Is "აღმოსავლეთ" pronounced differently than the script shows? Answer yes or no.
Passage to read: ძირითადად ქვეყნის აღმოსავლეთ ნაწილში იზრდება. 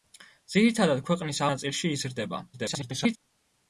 yes